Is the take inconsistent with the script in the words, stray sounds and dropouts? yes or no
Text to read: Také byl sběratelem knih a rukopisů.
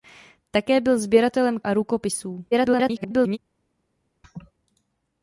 yes